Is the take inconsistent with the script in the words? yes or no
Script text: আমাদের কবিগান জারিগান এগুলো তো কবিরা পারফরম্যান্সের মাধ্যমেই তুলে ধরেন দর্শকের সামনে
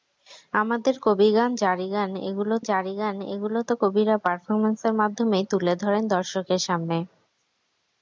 yes